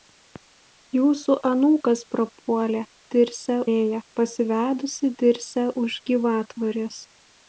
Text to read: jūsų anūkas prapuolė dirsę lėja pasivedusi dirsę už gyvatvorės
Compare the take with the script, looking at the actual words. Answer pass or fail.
pass